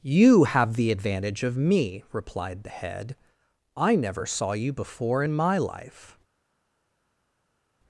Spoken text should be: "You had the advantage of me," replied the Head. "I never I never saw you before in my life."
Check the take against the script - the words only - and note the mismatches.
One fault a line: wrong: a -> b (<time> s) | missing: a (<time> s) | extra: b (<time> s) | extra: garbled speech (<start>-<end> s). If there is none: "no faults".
wrong: had -> have (0.5 s)
missing: I never (4.2 s)